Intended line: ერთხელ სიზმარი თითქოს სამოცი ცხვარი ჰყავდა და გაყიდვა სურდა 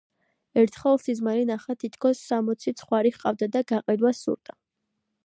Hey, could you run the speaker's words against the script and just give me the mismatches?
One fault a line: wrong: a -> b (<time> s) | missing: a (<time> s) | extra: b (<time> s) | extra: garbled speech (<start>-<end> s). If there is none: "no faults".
extra: ნახა (1.5 s)